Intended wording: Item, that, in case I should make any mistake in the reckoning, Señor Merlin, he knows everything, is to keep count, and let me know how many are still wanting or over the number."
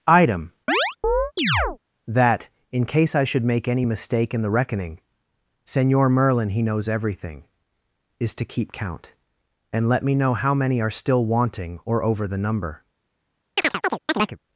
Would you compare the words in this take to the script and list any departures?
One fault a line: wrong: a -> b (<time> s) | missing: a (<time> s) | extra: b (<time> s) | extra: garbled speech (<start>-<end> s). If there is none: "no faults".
no faults